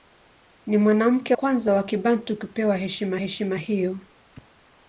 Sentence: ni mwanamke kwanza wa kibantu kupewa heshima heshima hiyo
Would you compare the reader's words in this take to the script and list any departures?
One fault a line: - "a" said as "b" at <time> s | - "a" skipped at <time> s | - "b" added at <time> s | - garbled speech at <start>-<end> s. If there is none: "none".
none